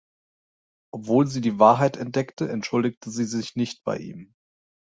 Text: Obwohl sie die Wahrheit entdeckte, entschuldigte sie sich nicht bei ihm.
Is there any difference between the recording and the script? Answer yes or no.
no